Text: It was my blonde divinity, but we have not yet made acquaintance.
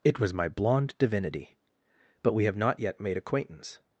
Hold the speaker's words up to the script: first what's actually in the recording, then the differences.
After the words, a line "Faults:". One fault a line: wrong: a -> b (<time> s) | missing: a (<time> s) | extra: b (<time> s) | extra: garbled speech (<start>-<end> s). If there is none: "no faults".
It was my blonde divinity, but we have not yet made acquaintance.
Faults:
no faults